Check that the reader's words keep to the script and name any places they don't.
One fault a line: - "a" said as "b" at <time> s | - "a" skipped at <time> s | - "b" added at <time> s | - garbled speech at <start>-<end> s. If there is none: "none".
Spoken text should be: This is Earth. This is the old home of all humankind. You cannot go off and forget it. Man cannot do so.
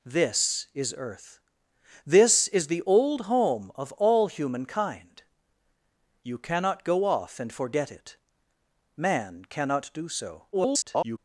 - garbled speech at 10.5-11.2 s